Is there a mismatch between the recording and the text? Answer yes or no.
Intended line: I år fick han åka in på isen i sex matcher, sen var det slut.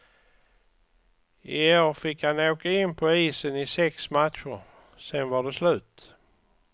no